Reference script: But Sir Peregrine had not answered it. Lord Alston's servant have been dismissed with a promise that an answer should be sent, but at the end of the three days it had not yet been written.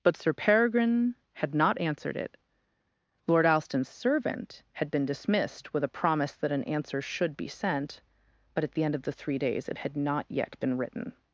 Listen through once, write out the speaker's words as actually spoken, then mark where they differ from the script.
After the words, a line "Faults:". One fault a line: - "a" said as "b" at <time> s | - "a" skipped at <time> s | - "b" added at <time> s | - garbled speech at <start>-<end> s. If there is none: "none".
But Sir Peregrine had not answered it. Lord Alston's servant had been dismissed with a promise that an answer should be sent, but at the end of the three days it had not yet been written.
Faults:
- "have" said as "had" at 4.7 s